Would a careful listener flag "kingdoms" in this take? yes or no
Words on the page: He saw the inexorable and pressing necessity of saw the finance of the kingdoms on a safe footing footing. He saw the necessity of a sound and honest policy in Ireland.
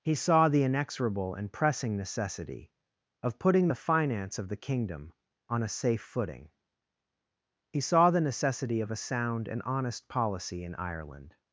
yes